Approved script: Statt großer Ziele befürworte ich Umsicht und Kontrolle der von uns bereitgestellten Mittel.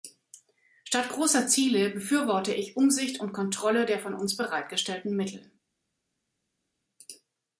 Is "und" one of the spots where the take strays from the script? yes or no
no